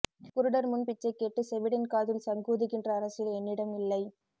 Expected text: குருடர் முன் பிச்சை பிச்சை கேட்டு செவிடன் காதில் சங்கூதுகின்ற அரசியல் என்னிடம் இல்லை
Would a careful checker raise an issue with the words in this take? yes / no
yes